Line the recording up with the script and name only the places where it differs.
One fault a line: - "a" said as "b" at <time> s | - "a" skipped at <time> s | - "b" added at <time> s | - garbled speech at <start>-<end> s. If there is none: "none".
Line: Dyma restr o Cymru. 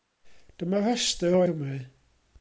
none